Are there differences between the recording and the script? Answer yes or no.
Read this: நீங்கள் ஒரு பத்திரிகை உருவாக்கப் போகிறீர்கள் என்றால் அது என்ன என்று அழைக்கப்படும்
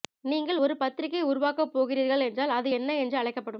no